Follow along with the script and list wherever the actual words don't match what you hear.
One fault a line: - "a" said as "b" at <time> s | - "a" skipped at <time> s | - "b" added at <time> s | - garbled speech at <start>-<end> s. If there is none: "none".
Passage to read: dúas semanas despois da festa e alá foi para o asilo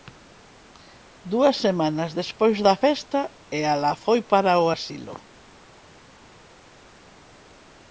none